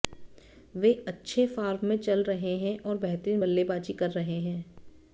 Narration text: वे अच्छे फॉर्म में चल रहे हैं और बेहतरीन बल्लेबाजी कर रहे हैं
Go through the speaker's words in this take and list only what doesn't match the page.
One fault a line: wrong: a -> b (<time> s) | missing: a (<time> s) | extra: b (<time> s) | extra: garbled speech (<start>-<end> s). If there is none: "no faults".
no faults